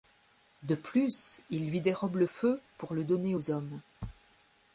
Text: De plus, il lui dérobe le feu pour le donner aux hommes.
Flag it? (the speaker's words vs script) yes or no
no